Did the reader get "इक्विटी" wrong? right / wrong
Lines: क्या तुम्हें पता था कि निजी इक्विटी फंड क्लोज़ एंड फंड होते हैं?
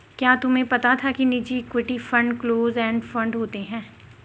right